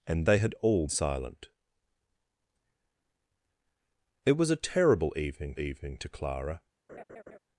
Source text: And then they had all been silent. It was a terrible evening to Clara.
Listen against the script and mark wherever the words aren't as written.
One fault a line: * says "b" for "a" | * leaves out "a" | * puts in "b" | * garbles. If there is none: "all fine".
* leaves out "then"
* leaves out "been"
* puts in "evening"